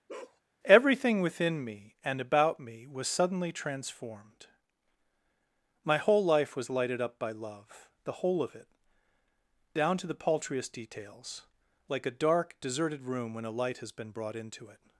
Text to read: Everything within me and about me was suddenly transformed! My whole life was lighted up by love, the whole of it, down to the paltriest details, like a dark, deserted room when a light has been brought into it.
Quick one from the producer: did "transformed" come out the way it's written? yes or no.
yes